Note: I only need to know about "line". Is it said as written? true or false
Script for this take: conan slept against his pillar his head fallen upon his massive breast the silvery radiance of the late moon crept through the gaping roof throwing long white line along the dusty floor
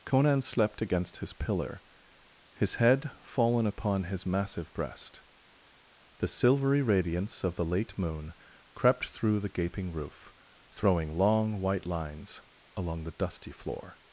false